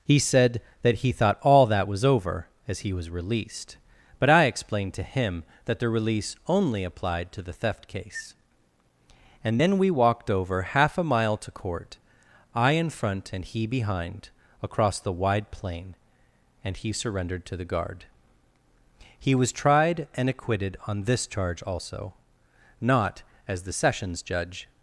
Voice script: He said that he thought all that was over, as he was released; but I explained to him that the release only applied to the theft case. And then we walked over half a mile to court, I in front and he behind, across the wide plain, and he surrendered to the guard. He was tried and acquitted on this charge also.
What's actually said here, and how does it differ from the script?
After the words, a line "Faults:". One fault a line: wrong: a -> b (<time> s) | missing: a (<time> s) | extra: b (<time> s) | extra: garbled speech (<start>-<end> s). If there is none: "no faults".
He said that he thought all that was over, as he was released; but I explained to him that the release only applied to the theft case. And then we walked over half a mile to court, I in front and he behind, across the wide plain, and he surrendered to the guard. He was tried and acquitted on this charge also. Not, as the sessions judge
Faults:
extra: Not as the sessions judge (22.8 s)